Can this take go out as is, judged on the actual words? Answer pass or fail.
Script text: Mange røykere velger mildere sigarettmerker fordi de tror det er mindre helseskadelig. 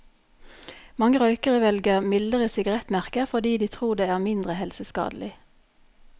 pass